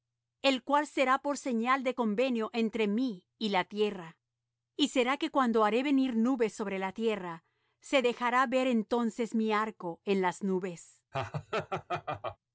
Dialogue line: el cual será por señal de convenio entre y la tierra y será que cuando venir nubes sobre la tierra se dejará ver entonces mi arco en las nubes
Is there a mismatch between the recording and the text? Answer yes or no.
yes